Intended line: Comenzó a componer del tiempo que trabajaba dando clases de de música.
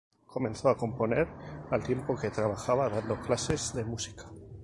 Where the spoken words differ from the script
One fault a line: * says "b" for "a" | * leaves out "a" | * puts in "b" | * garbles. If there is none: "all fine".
* says "al" for "del"
* leaves out "de"